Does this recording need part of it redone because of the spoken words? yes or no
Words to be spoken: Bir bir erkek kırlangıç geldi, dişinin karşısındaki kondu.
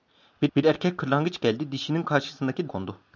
no